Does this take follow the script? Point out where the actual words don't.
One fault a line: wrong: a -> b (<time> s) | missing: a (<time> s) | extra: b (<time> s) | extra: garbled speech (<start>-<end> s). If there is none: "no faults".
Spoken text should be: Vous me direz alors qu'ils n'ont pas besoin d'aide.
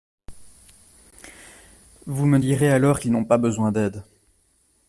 no faults